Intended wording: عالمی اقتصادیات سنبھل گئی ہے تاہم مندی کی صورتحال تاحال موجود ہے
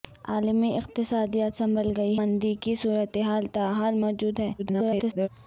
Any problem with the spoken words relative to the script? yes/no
yes